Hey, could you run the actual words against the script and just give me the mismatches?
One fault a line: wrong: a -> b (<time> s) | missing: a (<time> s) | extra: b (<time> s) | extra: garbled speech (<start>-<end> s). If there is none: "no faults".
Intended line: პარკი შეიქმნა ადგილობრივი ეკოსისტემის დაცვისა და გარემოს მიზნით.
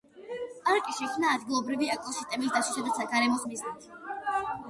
no faults